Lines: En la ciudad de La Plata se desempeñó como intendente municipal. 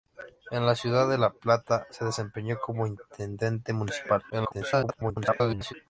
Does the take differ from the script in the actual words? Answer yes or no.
yes